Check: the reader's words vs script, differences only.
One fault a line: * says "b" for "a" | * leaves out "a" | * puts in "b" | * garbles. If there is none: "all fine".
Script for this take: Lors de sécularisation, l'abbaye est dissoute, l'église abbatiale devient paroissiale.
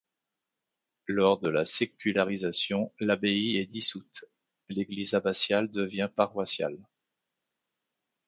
* puts in "la"